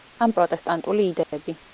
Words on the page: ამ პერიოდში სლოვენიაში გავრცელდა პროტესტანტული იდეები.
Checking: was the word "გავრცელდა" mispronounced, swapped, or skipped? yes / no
yes